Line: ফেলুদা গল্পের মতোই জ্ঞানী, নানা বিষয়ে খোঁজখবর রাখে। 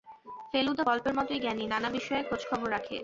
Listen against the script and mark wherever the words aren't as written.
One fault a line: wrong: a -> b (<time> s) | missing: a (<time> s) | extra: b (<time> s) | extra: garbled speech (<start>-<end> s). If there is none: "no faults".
no faults